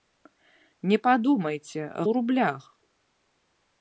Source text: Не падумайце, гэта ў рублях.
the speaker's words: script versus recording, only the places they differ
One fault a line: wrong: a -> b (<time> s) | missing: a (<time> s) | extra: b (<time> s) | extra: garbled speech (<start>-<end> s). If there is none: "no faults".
missing: гэта (1.8 s)